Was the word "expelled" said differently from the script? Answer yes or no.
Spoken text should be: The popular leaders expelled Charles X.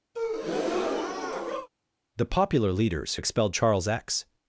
no